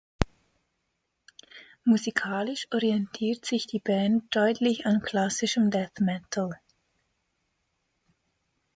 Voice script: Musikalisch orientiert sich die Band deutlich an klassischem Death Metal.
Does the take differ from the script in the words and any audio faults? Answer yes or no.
no